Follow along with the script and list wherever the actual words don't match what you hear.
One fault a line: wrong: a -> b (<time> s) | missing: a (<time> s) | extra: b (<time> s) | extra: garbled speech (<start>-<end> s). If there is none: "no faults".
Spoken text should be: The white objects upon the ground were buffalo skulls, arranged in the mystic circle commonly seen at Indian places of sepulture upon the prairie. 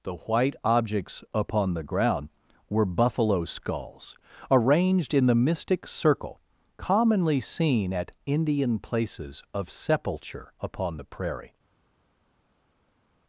no faults